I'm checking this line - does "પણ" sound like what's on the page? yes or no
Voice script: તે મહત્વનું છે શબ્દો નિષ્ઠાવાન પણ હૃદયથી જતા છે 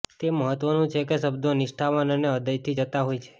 no